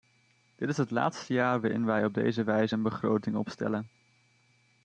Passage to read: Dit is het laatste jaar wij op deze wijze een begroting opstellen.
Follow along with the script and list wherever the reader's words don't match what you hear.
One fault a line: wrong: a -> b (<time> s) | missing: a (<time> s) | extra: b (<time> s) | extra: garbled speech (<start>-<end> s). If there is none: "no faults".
extra: waarin (1.6 s)